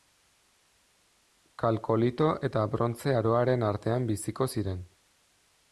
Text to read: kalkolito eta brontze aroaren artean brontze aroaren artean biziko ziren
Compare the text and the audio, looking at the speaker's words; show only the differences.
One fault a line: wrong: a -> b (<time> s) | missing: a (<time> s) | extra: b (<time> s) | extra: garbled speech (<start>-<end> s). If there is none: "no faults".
missing: brontze aroaren artean (4.1 s)